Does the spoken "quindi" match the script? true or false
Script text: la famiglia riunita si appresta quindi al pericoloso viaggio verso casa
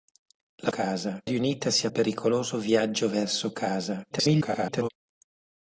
false